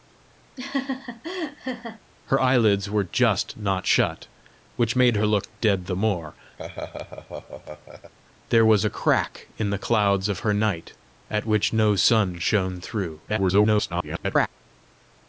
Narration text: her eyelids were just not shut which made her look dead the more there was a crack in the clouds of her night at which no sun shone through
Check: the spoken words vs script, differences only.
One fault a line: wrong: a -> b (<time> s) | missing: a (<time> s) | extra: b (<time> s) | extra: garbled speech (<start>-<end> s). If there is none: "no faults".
extra: garbled speech (13.3-14.5 s)